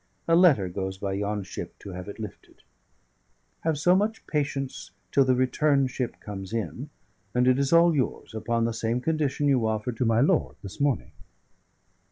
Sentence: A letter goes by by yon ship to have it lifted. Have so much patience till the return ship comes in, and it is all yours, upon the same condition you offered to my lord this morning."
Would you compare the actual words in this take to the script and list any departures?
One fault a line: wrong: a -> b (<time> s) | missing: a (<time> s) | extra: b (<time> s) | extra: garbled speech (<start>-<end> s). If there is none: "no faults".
missing: by (1.1 s)